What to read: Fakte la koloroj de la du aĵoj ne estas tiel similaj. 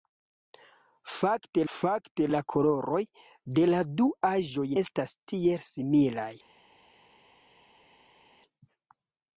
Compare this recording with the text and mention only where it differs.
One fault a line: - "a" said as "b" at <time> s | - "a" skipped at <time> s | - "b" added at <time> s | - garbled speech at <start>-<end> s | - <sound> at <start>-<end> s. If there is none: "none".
- "fakte" added at 1.8 s
- "ne" skipped at 4.7 s